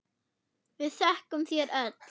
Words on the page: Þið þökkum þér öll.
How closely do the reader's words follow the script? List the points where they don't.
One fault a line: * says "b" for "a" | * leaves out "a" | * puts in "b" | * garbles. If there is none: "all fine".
* says "Við" for "Þið"